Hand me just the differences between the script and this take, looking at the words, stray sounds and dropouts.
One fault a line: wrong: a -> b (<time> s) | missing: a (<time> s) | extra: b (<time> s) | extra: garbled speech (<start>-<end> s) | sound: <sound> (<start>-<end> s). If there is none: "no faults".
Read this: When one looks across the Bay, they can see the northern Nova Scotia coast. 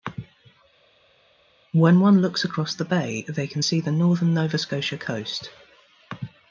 no faults